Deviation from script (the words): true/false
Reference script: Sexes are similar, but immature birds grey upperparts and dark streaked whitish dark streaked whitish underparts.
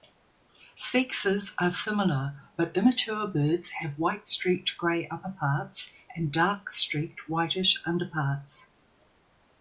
true